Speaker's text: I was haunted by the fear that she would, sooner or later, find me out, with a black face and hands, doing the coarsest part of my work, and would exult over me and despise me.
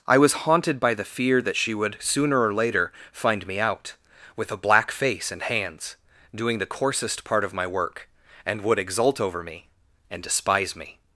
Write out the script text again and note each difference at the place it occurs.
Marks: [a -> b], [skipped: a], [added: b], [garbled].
I was haunted by the fear that she would, sooner or later, find me out, with a black face and hands, doing the coarsest part of my work, and would exult over me and despise me.